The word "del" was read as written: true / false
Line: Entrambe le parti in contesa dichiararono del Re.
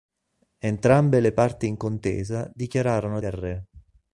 true